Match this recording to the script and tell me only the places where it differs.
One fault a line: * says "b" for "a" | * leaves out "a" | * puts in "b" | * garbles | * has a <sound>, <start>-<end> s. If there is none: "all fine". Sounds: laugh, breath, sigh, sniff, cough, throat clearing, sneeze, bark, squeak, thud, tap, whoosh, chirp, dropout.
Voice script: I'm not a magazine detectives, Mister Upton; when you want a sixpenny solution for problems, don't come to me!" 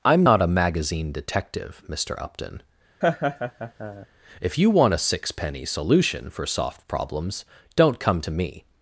* says "detective" for "detectives"
* has a laugh, 3.0-4.1 s
* says "if" for "when"
* puts in "soft"